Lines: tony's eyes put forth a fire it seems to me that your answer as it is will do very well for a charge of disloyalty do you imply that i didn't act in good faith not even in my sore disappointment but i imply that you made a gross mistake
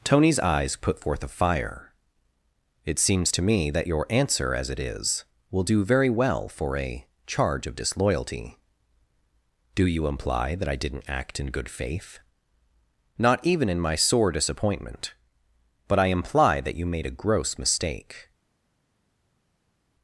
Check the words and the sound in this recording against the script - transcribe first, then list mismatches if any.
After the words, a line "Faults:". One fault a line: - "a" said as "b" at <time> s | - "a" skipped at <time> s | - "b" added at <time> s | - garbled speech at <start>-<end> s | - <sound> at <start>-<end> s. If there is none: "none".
tony's eyes put forth a fire it seems to me that your answer as it is will do very well for a charge of disloyalty do you imply that i didn't act in good faith not even in my sore disappointment but i imply that you made a gross mistake
Faults:
none